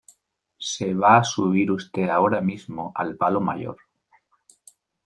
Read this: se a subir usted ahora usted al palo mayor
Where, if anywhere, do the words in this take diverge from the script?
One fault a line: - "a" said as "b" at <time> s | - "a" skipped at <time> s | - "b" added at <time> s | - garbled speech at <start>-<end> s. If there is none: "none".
- "va" added at 0.9 s
- "usted" said as "mismo" at 2.4 s